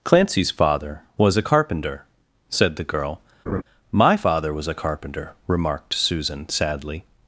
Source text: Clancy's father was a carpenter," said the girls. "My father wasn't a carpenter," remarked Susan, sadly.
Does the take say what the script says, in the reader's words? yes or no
no